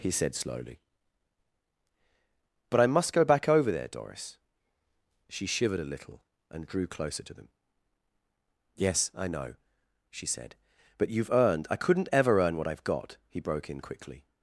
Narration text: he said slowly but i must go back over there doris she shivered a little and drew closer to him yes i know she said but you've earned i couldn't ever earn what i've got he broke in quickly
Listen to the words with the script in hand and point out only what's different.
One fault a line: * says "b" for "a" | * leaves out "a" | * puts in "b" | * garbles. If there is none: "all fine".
* says "them" for "him"